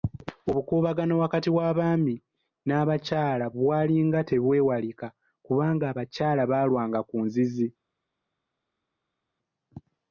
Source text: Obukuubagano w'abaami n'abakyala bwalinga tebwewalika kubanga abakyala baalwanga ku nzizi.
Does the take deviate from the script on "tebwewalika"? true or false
false